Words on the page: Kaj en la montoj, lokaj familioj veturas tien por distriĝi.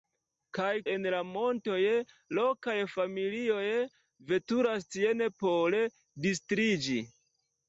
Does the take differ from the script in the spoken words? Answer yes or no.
no